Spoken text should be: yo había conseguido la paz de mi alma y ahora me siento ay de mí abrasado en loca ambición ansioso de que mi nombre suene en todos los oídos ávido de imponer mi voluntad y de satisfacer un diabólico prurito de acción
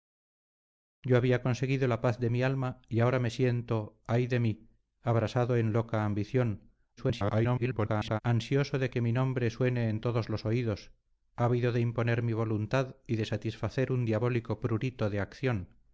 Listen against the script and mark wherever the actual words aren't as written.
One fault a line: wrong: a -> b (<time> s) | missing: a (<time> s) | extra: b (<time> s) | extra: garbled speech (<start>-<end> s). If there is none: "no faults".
extra: garbled speech (7.0-8.2 s)